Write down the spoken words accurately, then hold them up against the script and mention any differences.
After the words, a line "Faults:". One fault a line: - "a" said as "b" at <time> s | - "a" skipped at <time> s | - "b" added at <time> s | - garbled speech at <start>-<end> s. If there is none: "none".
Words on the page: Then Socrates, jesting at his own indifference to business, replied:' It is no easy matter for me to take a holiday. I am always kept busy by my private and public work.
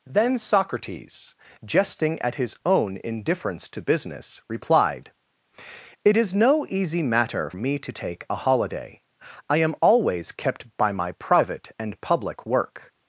Then Socrates, jesting at his own indifference to business, replied:' It is no easy matter me to take a holiday. I am always kept by my private and public work.
Faults:
- "for" skipped at 7.5 s
- "busy" skipped at 10.7 s